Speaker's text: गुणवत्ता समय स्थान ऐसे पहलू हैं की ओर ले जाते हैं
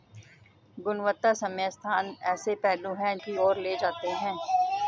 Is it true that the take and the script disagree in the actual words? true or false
false